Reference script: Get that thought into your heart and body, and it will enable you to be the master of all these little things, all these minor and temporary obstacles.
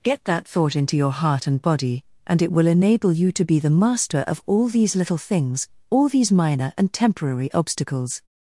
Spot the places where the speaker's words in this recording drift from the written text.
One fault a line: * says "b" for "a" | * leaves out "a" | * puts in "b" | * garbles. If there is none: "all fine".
all fine